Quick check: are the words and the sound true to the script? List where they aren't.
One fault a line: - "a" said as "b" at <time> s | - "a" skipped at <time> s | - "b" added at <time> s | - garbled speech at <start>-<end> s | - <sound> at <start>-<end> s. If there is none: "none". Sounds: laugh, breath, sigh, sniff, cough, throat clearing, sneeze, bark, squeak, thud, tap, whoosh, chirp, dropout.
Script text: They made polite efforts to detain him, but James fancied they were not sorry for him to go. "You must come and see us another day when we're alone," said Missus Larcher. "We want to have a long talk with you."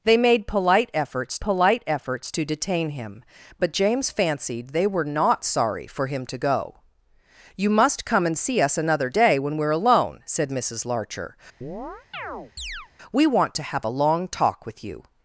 - "polite efforts" added at 1.4 s
- chirp at 11.6-12.9 s